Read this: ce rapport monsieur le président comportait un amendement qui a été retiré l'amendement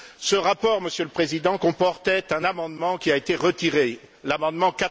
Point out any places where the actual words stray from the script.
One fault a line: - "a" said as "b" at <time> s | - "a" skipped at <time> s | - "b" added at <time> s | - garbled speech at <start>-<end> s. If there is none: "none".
none